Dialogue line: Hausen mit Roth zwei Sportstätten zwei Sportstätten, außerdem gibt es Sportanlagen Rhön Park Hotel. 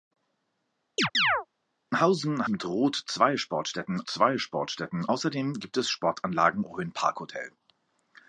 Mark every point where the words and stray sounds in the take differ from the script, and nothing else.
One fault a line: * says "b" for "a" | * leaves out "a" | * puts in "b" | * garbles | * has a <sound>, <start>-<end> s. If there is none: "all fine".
* has a chirp, 1.0-1.5 s